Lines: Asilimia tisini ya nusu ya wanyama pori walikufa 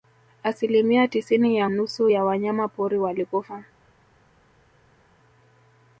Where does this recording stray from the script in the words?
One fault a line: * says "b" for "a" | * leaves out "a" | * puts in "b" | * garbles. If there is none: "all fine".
all fine